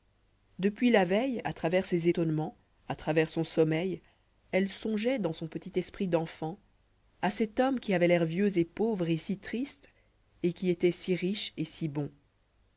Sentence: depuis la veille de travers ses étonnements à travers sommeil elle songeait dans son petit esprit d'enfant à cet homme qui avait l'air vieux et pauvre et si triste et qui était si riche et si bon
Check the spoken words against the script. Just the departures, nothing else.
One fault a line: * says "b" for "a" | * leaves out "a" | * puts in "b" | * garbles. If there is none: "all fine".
* says "à" for "de"
* puts in "son"